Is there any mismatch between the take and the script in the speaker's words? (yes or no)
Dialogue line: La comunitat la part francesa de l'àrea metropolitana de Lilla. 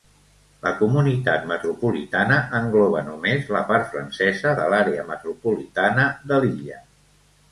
yes